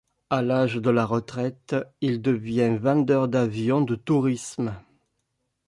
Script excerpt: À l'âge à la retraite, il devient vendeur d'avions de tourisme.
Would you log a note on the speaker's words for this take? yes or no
yes